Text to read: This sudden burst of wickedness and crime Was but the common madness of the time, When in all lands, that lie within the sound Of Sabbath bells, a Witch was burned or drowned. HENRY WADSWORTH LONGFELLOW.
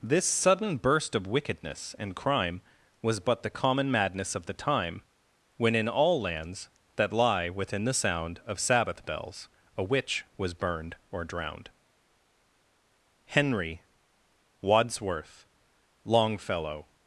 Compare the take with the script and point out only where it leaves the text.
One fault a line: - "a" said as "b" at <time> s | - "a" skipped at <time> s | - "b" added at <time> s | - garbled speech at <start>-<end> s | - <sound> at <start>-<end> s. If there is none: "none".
none